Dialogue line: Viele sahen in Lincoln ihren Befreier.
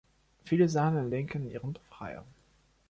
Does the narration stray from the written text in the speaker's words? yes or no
no